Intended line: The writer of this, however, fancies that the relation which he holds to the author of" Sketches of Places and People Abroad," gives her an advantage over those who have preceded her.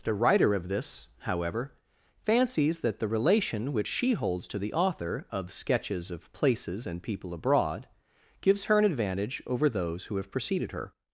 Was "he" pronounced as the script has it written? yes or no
no